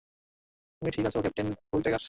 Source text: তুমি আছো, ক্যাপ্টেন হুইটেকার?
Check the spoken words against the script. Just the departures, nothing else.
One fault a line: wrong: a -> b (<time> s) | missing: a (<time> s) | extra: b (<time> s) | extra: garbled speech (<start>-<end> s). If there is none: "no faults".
extra: ঠিক (0.9 s)